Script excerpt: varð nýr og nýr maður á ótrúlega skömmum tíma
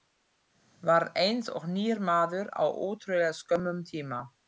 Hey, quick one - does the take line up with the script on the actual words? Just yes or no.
no